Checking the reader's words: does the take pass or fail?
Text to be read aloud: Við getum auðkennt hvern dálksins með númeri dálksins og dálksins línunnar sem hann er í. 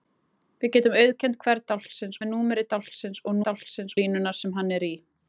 pass